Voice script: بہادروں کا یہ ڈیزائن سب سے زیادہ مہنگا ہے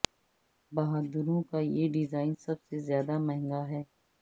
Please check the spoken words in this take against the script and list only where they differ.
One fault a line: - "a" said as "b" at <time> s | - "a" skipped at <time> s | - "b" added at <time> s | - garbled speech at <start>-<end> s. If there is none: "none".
none